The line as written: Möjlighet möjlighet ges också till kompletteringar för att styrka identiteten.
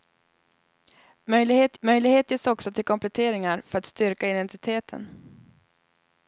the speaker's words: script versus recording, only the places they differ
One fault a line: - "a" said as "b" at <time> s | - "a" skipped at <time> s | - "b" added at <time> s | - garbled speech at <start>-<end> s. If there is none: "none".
none